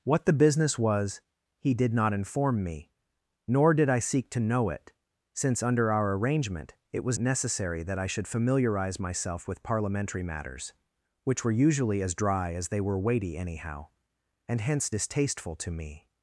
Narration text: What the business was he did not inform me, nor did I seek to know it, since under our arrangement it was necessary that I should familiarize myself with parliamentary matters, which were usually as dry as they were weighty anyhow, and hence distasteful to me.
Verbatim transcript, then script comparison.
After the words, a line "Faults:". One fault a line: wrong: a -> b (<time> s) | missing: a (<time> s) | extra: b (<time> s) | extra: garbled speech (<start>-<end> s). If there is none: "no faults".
What the business was he did not inform me, nor did I seek to know it, since under our arrangement it was necessary that I should familiarize myself with parliamentary matters, which were usually as dry as they were weighty anyhow, and hence distasteful to me.
Faults:
no faults